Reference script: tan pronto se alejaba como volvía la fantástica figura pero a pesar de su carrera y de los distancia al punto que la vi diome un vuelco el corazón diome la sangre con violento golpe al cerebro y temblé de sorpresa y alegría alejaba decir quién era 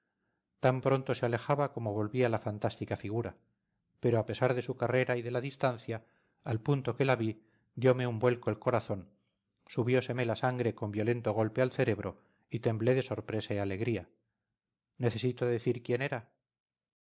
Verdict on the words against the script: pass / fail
fail